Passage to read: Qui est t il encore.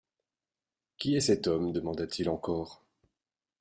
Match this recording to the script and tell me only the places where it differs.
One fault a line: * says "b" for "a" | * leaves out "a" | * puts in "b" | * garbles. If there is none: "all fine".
* puts in "cet homme demanda"